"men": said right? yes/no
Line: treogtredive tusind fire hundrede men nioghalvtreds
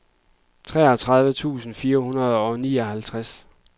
no